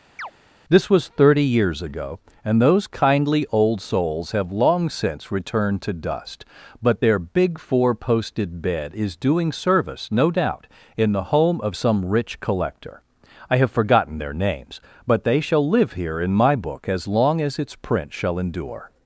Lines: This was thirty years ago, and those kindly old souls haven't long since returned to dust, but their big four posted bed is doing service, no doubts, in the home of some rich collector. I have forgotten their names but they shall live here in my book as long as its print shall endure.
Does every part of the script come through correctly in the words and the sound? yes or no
no